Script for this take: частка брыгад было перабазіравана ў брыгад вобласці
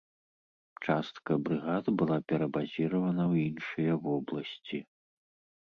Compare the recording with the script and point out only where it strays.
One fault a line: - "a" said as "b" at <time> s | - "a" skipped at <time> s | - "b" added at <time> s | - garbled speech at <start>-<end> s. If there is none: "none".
- "было" said as "была" at 2.0 s
- "брыгад" said as "іншыя" at 3.5 s